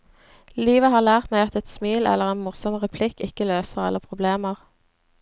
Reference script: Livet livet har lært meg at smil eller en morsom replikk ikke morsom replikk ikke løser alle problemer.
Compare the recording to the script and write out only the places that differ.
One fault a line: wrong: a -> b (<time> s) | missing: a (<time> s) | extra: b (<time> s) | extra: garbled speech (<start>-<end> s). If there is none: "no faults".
missing: livet (0.9 s)
extra: et (1.6 s)
missing: morsom replikk ikke (3.5 s)